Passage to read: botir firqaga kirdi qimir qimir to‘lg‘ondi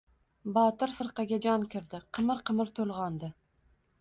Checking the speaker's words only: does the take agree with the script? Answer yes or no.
no